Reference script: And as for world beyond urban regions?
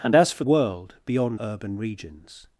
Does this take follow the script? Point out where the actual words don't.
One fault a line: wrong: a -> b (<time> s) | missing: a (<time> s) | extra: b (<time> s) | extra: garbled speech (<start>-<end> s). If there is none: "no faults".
no faults